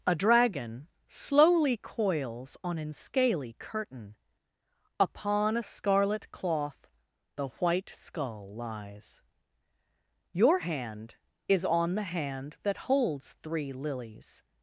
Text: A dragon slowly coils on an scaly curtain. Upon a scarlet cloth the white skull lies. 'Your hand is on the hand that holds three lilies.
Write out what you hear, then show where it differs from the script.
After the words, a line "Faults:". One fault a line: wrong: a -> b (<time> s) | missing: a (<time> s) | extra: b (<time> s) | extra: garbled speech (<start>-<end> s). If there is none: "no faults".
A dragon slowly coils on an scaly curtain. Upon a scarlet cloth the white skull lies. 'Your hand is on the hand that holds three lilies.
Faults:
no faults